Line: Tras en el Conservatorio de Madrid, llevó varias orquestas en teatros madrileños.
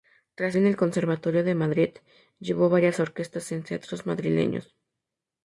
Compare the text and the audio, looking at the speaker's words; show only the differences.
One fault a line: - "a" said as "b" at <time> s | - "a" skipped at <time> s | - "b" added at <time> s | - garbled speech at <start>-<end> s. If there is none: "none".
none